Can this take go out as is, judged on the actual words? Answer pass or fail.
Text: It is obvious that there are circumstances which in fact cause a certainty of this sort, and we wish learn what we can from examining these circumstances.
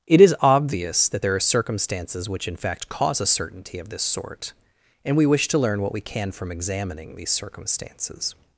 fail